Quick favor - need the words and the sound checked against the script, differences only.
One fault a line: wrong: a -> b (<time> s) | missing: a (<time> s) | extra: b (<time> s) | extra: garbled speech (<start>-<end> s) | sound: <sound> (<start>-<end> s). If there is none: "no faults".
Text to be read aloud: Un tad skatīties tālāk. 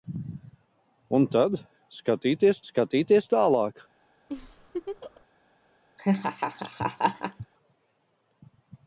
extra: skatīties (2.7 s)
sound: laugh (4.3-5.2 s)
sound: laugh (6.0-7.5 s)